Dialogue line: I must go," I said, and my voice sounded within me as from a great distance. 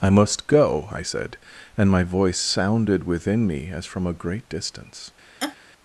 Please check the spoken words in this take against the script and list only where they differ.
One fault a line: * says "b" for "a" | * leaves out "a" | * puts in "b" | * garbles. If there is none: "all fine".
all fine